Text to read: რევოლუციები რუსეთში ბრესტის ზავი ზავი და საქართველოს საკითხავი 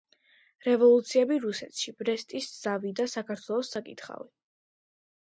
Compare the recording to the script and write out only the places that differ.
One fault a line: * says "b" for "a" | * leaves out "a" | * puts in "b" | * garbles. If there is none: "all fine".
* leaves out "ზავი"